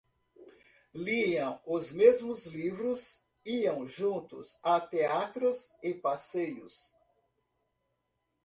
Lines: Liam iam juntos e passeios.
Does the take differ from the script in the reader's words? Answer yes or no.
yes